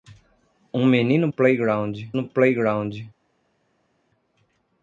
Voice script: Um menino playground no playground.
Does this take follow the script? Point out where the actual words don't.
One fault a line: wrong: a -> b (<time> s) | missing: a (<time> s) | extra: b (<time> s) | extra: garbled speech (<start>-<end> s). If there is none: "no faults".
no faults